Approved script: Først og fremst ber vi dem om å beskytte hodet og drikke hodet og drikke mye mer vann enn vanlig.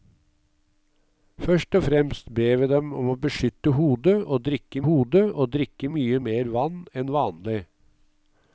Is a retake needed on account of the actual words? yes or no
no